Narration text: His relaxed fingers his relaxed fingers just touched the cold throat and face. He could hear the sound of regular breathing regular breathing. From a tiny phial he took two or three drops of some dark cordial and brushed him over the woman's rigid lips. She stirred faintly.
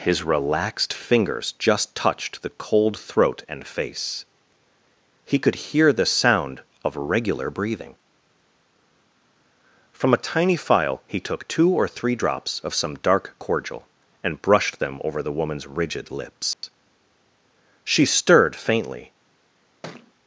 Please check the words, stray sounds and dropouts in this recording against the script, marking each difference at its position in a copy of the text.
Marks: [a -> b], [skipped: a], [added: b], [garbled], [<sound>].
His relaxed fingers [skipped: his relaxed fingers] just touched the cold throat and face. He could hear the sound of regular breathing [skipped: regular breathing.] From a tiny phial he took two or three drops of some dark cordial and brushed [him -> them] over the woman's rigid lips. [dropout] She stirred faintly. [thud]